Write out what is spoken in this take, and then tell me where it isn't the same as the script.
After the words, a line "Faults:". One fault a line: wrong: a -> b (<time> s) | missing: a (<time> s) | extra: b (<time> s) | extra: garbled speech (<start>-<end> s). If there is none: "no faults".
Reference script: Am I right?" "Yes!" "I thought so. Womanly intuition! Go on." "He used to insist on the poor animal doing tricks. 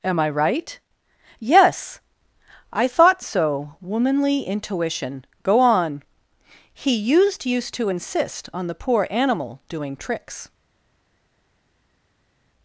Am I right?" "Yes!" "I thought so. Womanly intuition! Go on." "He used used to insist on the poor animal doing tricks.
Faults:
extra: used (7.4 s)